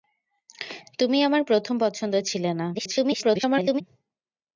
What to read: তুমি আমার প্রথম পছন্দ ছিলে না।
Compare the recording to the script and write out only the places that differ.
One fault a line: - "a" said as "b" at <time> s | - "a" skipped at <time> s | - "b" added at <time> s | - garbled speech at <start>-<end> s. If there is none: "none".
- garbled speech at 2.7-3.8 s